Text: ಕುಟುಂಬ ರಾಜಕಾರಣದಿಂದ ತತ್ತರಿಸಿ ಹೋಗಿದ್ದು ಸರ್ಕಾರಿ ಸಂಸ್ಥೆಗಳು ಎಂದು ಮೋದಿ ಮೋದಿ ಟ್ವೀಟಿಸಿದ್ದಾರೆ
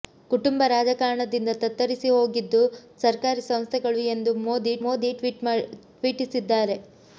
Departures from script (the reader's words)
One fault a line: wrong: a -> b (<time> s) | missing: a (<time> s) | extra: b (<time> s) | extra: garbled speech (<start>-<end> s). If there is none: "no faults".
no faults